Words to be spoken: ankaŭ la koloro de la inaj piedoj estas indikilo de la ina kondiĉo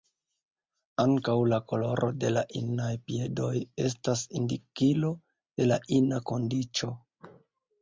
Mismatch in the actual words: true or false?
false